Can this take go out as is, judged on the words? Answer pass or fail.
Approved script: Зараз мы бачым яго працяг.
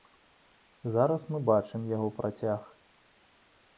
pass